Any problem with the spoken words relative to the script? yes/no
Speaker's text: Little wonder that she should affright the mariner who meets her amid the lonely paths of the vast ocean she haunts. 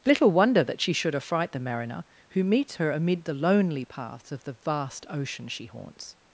no